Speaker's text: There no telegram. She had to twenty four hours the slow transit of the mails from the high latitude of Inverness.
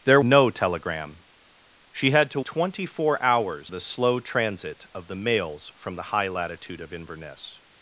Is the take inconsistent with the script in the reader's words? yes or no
no